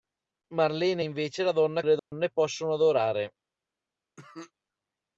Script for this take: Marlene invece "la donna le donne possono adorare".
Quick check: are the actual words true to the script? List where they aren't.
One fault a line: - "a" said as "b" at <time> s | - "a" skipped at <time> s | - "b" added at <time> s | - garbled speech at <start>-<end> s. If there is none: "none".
none